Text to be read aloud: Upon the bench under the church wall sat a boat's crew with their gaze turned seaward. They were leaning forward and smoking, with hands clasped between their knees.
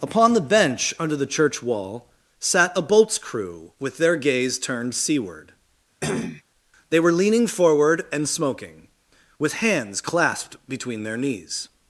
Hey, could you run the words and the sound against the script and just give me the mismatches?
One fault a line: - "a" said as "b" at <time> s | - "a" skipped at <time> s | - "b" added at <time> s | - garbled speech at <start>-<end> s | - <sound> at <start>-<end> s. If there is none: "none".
- cough at 6.0-6.4 s